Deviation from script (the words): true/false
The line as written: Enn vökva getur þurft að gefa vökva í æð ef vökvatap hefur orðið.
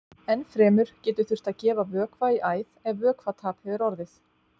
true